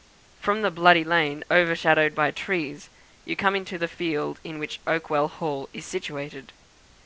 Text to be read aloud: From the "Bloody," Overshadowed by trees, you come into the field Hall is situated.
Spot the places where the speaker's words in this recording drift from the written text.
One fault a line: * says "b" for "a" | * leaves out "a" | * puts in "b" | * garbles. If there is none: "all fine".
* puts in "Lane"
* puts in "in which Oakwell"